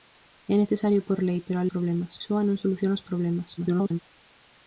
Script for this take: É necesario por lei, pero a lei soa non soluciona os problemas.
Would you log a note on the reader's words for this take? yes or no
yes